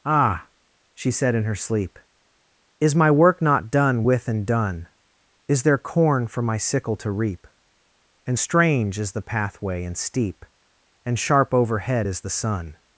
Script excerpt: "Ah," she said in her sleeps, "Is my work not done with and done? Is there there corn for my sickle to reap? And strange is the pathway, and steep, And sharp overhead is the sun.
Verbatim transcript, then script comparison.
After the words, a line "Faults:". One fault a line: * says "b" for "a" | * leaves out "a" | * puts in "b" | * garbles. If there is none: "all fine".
"Ah," she said in her sleep, "Is my work not done with and done? Is there corn for my sickle to reap? And strange is the pathway, and steep, And sharp overhead is the sun.
Faults:
* says "sleep" for "sleeps"
* leaves out "there"